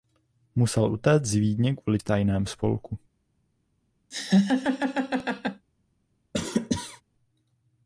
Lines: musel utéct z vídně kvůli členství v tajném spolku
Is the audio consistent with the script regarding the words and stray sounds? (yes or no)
no